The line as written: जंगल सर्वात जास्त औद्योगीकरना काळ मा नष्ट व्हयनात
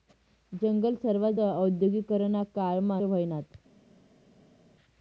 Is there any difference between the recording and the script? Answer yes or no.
yes